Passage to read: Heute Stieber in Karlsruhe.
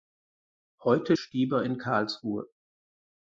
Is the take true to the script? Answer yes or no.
yes